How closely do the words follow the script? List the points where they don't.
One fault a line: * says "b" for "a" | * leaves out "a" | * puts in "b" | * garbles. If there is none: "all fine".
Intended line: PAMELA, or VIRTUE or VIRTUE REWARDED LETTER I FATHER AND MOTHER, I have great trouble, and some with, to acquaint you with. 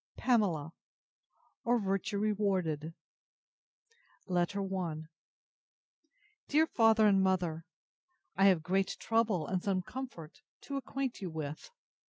* leaves out "or VIRTUE"
* puts in "DEAR"
* says "comfort" for "with"